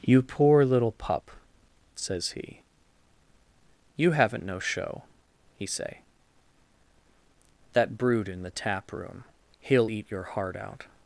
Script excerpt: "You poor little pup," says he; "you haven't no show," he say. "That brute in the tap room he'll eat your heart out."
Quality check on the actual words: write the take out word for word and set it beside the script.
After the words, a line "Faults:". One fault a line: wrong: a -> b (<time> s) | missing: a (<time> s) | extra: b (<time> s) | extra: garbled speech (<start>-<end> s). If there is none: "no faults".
"You poor little pup," says he; "you haven't no show," he say. "That brute in the tap room he'll eat your heart out."
Faults:
no faults